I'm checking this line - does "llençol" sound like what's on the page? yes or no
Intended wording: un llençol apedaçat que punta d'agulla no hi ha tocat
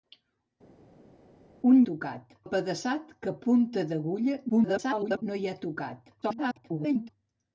no